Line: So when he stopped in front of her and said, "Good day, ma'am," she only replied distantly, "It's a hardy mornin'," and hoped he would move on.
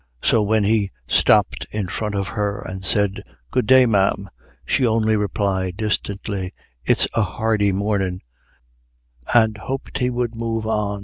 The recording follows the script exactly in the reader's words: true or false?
true